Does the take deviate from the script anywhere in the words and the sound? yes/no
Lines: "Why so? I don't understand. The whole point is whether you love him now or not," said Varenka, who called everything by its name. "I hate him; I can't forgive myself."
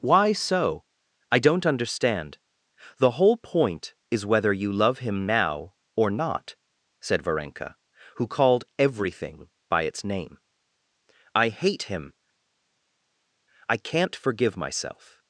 no